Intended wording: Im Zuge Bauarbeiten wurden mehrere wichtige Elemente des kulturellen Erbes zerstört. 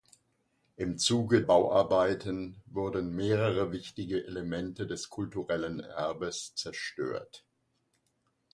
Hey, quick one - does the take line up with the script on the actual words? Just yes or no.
yes